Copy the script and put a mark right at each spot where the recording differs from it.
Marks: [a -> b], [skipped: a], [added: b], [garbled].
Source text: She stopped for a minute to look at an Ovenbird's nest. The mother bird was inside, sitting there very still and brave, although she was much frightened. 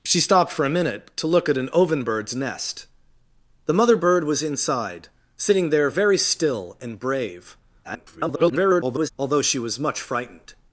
She stopped for a minute to look at an Ovenbird's nest. The mother bird was inside, sitting there very still and brave, [garbled] although she was much frightened.